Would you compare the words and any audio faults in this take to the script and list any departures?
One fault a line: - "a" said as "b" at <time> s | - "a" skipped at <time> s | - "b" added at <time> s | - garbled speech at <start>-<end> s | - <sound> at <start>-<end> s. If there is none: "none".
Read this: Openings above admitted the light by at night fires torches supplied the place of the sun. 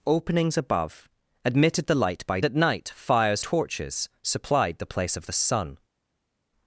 none